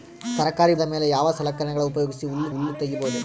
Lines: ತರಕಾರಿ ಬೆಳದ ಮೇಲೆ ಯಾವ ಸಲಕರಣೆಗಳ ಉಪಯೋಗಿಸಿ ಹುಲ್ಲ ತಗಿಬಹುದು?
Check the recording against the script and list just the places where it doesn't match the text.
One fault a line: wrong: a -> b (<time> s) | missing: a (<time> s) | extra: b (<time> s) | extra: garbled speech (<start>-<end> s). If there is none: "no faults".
missing: ಬೆಳದ (0.8 s)
extra: ಹುಲ್ಲ (2.5 s)